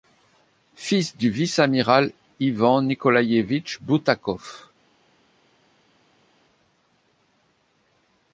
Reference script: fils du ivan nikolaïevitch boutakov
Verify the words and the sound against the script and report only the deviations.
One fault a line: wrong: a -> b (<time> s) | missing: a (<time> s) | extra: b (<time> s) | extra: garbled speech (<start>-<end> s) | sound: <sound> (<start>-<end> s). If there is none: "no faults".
extra: vice amiral (1.3 s)